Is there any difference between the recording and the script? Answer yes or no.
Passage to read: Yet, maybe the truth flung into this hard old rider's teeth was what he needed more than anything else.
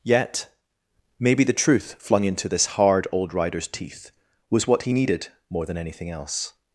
no